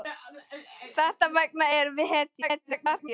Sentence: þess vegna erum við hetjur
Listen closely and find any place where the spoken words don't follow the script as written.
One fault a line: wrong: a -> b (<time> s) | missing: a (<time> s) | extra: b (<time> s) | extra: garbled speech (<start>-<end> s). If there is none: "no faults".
extra: garbled speech (2.4-3.1 s)